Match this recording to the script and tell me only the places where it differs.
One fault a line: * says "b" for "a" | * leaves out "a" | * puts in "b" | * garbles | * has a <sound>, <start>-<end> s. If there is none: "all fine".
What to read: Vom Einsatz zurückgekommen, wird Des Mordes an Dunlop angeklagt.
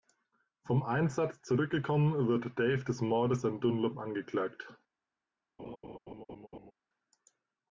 * puts in "Dave"
* has a laugh, 5.6-6.7 s